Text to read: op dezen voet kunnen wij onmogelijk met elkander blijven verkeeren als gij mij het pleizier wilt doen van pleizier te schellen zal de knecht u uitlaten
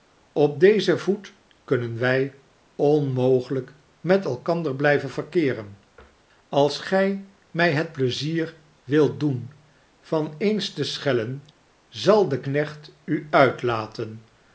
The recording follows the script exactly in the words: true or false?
false